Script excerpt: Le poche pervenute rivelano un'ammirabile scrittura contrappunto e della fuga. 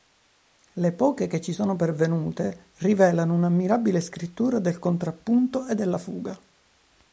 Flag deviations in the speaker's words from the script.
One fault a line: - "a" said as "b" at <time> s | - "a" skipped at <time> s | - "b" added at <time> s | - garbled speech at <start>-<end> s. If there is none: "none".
- "che ci sono" added at 1.3 s
- "del" added at 4.6 s